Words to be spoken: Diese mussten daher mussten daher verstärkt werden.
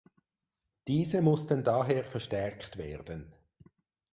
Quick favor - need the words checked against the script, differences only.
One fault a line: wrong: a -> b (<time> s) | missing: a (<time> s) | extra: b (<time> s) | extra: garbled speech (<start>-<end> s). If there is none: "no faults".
missing: mussten daher (2.0 s)